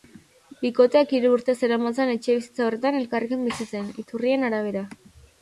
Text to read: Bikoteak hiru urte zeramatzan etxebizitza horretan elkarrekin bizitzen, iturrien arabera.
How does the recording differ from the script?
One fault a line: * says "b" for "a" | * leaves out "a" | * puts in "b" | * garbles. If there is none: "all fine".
all fine